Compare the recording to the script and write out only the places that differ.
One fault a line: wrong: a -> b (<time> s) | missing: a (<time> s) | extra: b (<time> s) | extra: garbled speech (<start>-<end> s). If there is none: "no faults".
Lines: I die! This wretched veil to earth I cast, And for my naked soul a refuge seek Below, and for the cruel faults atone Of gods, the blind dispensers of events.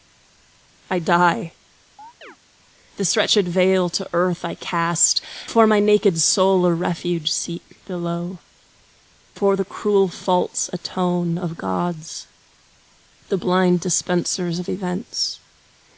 missing: And (5.2 s)
missing: and (8.4 s)